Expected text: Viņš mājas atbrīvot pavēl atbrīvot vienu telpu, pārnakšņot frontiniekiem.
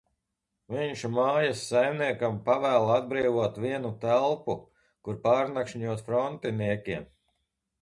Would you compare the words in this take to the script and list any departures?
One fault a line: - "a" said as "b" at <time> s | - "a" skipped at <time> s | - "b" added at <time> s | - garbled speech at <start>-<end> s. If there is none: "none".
- "atbrīvot" said as "saimniekam" at 1.7 s
- "kur" added at 5.0 s